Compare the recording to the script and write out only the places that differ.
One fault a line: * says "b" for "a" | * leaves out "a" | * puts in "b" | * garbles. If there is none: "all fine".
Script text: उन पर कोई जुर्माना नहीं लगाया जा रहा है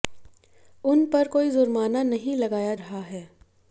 * leaves out "जा"